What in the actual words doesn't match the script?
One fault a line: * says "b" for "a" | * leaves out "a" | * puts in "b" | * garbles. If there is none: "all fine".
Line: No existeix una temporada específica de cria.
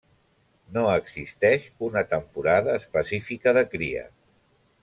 all fine